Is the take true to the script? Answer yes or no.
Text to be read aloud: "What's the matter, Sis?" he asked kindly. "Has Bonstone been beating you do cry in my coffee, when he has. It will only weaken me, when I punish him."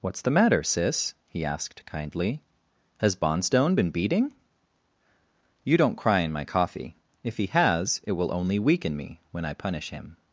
no